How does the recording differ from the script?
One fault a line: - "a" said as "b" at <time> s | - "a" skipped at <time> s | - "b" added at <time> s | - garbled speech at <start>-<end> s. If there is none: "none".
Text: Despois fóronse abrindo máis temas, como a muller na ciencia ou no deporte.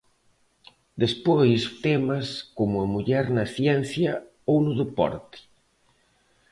- "fóronse abrindo máis" skipped at 1.6 s